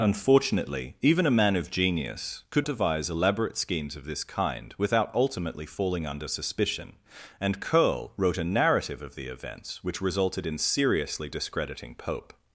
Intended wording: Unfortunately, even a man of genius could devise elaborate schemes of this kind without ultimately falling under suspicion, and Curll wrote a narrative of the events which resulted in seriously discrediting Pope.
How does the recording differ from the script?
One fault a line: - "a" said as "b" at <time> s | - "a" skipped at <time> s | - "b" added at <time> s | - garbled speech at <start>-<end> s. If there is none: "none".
none